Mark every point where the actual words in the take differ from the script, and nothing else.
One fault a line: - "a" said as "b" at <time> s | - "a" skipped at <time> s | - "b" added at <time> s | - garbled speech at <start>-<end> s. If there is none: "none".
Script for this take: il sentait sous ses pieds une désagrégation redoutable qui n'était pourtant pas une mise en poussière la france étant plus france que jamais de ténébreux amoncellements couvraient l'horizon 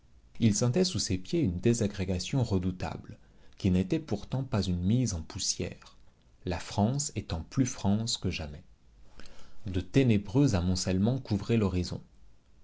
none